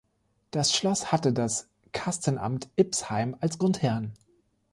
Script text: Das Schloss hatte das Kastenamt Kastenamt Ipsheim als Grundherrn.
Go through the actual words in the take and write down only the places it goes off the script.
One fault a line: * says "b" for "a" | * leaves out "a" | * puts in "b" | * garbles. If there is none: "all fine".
* leaves out "Kastenamt"